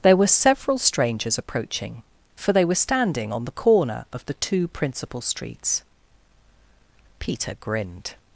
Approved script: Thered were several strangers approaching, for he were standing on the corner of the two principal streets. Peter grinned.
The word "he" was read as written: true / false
false